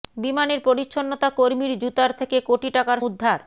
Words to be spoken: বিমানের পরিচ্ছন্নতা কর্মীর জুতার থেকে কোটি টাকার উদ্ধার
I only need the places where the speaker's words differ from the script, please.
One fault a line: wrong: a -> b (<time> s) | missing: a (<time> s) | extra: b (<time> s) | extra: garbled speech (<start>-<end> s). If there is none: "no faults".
no faults